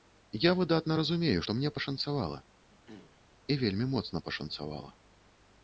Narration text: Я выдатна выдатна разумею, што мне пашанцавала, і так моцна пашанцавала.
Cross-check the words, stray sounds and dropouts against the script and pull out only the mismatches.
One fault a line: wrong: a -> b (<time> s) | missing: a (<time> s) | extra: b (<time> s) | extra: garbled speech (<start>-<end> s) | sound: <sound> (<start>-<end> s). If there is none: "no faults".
missing: выдатна (0.9 s)
sound: throat clearing (2.7-3.2 s)
wrong: так -> вельмі (3.7 s)